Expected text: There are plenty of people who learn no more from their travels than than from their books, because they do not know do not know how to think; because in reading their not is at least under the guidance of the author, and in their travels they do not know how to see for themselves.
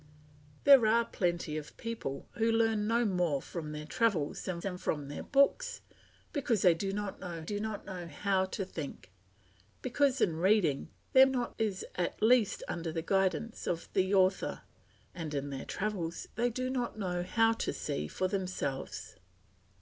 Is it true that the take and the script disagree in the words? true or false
false